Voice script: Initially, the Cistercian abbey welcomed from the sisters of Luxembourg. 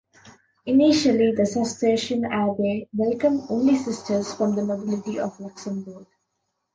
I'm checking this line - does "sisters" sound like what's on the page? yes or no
no